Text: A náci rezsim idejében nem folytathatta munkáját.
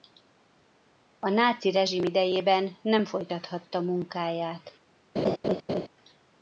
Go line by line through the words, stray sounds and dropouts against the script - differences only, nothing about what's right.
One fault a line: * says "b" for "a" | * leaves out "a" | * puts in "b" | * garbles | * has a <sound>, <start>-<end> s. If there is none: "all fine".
* has a laugh, 5.2-5.9 s